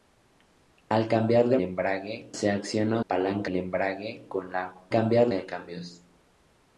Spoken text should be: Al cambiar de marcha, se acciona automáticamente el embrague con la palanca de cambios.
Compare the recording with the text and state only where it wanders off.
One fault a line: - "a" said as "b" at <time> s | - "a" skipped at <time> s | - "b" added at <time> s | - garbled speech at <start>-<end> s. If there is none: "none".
- "marcha" said as "embrague" at 1.6 s
- "automáticamente" said as "palanca" at 3.1 s
- "palanca" said as "cambiar" at 4.9 s